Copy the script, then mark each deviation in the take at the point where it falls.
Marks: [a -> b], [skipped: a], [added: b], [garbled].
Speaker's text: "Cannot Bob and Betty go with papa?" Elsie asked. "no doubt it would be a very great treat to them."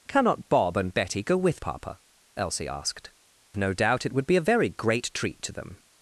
"Cannot Bob and Betty go with papa?" Elsie asked. "no doubt it would be a very great treat to them."